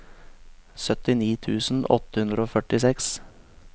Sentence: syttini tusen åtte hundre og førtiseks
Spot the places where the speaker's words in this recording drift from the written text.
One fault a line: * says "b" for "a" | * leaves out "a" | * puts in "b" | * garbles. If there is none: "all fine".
all fine